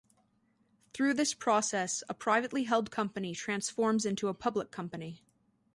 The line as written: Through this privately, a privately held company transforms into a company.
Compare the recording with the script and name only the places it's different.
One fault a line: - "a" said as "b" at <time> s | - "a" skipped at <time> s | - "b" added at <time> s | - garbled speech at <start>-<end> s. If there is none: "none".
- "privately" said as "process" at 1.4 s
- "public" added at 4.3 s